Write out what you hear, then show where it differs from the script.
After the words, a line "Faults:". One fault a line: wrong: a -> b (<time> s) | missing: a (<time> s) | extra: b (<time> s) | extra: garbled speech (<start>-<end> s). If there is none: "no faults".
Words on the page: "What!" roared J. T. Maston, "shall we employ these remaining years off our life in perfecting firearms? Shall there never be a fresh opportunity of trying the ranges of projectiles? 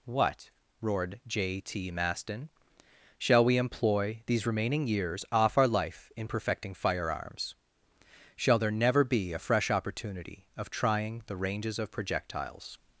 "What!" roared J. T. Maston, "shall we employ these remaining years off our life in perfecting firearms? Shall there never be a fresh opportunity of trying the ranges of projectiles?
Faults:
no faults